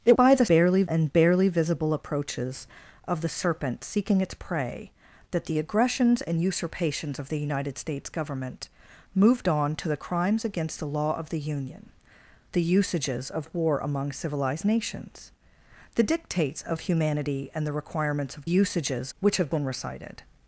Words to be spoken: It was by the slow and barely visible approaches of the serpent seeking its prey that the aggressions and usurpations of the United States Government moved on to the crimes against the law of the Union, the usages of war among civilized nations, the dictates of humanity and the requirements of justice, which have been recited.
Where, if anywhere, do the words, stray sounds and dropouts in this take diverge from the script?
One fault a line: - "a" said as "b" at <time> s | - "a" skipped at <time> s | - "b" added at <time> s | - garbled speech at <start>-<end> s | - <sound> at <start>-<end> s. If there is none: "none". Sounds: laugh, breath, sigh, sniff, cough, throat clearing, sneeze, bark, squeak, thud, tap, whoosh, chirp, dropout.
- "was" skipped at 0.2 s
- "slow" said as "barely" at 0.5 s
- "justice" said as "usages" at 18.4 s